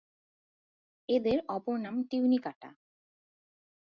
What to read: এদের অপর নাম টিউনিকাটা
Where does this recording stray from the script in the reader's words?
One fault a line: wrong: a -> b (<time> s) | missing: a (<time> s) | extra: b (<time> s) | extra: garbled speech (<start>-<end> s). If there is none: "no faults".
no faults